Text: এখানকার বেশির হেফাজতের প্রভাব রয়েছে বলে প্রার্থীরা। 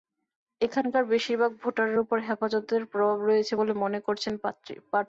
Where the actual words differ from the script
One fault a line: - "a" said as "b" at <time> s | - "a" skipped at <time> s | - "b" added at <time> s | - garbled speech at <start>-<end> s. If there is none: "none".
- "ভাগ ভোটারের ওপর" added at 1.4 s
- "মনে করছেন" added at 3.8 s